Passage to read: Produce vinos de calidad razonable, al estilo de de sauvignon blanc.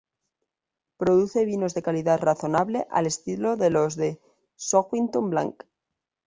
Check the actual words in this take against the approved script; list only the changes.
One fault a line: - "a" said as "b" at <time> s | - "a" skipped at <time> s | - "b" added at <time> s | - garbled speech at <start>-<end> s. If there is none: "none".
- "los" added at 3.7 s